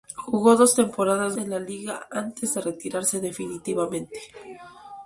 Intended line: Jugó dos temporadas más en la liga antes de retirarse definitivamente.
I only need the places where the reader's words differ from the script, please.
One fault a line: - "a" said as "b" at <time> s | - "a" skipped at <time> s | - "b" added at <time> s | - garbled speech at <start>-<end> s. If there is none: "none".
- "más" skipped at 1.4 s